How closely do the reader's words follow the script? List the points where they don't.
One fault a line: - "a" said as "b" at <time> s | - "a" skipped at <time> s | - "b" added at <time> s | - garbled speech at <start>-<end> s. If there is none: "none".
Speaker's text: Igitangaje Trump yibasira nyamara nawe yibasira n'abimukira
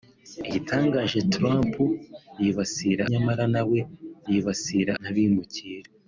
none